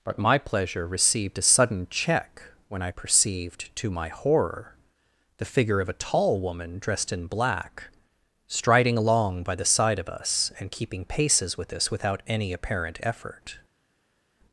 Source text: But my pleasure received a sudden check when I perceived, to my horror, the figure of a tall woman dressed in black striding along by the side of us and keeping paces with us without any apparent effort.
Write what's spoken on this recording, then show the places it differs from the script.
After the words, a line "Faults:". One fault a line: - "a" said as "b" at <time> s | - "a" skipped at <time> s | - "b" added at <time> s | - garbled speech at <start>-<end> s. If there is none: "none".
But my pleasure received a sudden check when I perceived, to my horror, the figure of a tall woman dressed in black striding along by the side of us and keeping paces with us without any apparent effort.
Faults:
none